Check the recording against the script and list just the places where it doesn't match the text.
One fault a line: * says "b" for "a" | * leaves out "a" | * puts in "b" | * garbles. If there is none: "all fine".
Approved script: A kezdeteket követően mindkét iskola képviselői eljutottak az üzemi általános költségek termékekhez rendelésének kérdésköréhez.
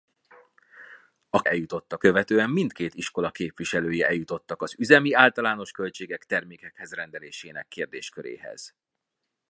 * says "eljutottak" for "kezdeteket"